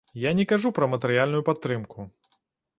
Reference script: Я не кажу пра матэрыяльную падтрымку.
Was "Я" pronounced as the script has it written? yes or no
yes